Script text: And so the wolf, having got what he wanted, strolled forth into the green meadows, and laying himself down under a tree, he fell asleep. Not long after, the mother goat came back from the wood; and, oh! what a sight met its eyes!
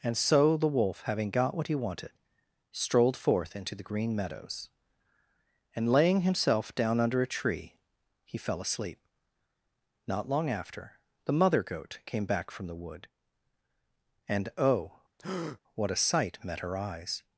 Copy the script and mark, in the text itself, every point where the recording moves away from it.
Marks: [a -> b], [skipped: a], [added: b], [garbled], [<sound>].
And so the wolf, having got what he wanted, strolled forth into the green meadows, and laying himself down under a tree, he fell asleep. Not long after, the mother goat came back from the wood; and, oh! [breath] what a sight met [its -> her] eyes!